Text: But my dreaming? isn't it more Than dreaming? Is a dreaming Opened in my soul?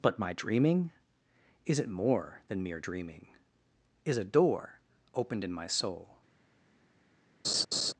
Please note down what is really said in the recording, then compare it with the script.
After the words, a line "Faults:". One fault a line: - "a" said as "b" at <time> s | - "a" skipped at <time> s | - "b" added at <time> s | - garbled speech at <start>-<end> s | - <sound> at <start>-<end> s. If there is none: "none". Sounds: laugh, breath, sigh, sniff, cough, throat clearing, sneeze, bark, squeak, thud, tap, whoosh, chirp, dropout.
But my dreaming? is it more Than mere dreaming? Is a door Opened in my soul?
Faults:
- "isn't" said as "is" at 1.6 s
- "mere" added at 2.6 s
- "dreaming" said as "door" at 4.2 s
- laugh at 7.4-7.9 s